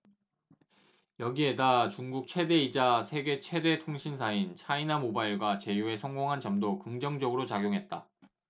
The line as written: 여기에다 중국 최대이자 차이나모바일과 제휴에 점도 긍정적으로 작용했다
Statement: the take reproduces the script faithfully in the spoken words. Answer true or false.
false